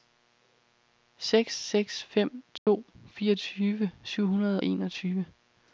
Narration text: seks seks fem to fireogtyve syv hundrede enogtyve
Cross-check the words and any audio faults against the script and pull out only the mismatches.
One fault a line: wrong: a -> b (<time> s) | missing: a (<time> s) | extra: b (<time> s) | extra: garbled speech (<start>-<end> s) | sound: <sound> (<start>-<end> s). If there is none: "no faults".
sound: dropout (2.6-2.7 s)